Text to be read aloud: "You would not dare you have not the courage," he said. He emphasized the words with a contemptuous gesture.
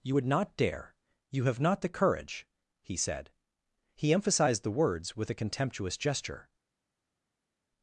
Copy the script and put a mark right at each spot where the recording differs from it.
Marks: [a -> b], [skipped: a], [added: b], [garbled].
"You would not dare you have not the courage," he said. He emphasized the words with a contemptuous gesture.